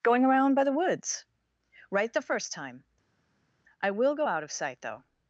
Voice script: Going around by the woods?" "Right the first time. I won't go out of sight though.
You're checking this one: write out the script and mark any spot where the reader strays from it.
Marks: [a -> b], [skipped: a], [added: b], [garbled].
Going around by the woods?" "Right the first time. I [won't -> will] go out of sight though.